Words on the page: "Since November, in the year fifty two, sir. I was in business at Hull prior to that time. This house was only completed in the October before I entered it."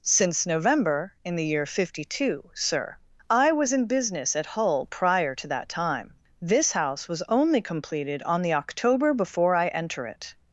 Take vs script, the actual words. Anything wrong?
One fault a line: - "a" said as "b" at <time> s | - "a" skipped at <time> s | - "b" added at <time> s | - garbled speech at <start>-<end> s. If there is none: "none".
- "in" said as "on" at 8.2 s
- "entered" said as "enter" at 9.7 s